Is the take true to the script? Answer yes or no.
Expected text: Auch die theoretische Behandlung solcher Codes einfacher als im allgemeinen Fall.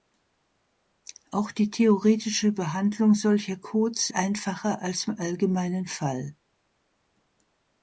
yes